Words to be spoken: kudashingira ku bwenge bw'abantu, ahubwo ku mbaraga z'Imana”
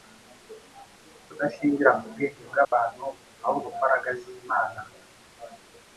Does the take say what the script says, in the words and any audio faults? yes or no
no